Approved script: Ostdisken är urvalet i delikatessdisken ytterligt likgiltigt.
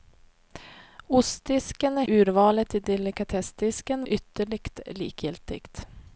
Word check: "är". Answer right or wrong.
right